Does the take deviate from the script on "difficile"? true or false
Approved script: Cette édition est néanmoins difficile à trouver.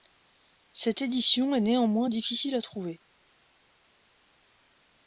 false